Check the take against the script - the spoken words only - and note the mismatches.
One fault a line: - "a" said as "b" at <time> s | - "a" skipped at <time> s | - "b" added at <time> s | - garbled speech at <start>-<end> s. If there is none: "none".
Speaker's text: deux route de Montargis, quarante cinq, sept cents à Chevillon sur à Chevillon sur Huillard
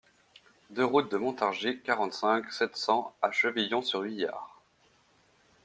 - "à Chevillon sur" skipped at 4.0 s